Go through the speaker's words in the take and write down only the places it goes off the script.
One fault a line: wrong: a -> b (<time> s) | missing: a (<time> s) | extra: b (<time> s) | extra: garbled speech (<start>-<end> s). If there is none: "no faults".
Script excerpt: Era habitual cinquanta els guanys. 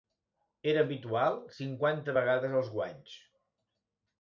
extra: vegades (2.2 s)